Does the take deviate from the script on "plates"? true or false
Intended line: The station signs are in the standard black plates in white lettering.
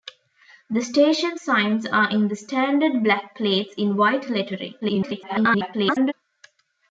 false